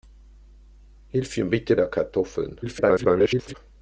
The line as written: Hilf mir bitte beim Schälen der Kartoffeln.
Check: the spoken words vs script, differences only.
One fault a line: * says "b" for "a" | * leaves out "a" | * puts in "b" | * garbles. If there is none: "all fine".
* leaves out "beim Schälen"
* garbles